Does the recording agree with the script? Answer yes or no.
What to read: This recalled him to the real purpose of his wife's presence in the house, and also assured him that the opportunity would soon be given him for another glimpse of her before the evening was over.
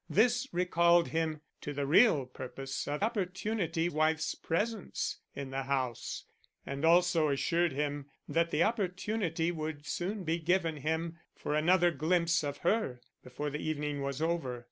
no